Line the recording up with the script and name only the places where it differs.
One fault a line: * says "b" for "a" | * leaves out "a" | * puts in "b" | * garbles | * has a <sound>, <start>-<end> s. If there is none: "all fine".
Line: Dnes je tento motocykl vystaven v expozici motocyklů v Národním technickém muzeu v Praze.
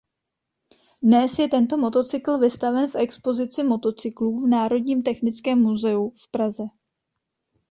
all fine